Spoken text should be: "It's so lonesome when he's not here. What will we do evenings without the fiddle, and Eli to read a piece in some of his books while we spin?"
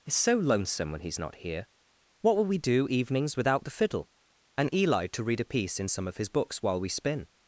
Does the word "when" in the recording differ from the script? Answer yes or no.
no